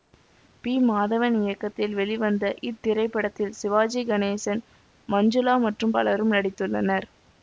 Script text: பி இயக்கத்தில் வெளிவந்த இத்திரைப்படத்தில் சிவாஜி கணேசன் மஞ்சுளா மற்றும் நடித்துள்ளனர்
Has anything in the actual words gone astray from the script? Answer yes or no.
yes